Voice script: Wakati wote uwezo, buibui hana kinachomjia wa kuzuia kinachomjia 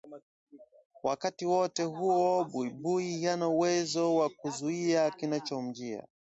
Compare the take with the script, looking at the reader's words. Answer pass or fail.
fail